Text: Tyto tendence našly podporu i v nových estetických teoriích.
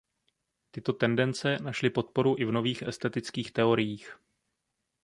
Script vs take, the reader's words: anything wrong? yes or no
no